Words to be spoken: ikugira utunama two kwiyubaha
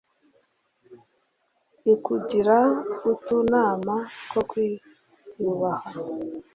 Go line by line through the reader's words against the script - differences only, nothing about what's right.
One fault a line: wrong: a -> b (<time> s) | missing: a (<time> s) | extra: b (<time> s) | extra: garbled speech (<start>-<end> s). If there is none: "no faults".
no faults